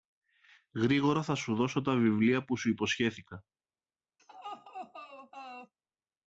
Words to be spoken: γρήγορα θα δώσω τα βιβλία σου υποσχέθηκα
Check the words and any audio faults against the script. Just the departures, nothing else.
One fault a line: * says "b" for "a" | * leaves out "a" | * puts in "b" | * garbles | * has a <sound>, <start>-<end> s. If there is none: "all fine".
* puts in "σου"
* puts in "που"
* has a laugh, 4.2-5.7 s